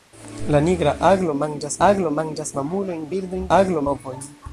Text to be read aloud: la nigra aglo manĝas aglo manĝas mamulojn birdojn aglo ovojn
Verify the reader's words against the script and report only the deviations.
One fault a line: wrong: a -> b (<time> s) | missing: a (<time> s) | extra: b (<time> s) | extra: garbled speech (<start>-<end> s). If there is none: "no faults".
no faults